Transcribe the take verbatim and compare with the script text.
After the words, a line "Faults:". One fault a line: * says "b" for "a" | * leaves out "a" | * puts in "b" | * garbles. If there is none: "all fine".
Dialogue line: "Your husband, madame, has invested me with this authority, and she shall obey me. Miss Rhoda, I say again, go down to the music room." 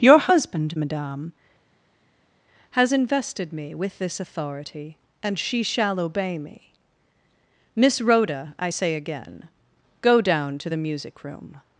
"Your husband, madame, has invested me with this authority, and she shall obey me. Miss Rhoda, I say again, go down to the music room."
Faults:
all fine